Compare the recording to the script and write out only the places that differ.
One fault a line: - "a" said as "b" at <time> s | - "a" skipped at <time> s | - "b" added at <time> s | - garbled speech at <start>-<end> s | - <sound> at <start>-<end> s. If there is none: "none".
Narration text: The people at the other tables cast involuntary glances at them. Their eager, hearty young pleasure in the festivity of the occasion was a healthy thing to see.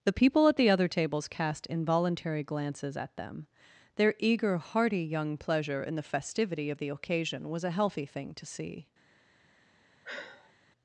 - sigh at 10.0-10.5 s